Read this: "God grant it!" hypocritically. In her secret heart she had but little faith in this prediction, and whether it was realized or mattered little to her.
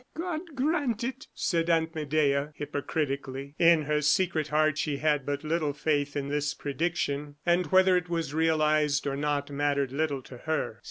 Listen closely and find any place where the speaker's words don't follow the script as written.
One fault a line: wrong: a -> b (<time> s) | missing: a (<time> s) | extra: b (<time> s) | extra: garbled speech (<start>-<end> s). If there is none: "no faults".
extra: said Aunt Medea (1.4 s)
extra: not (9.2 s)